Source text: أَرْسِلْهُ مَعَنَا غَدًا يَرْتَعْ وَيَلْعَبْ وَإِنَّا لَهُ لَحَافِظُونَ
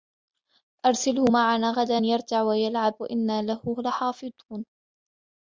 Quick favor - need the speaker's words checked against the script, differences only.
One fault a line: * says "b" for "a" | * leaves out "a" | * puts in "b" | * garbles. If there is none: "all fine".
all fine